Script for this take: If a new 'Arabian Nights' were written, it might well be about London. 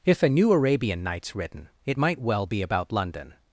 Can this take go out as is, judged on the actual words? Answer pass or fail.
fail